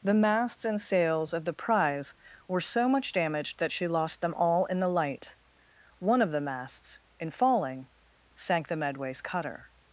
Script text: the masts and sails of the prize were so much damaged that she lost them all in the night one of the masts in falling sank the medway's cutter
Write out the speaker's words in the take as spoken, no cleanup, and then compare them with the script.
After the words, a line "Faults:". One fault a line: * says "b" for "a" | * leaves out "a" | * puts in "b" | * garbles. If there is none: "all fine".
the masts and sails of the prize were so much damaged that she lost them all in the light one of the masts in falling sank the medway's cutter
Faults:
* says "light" for "night"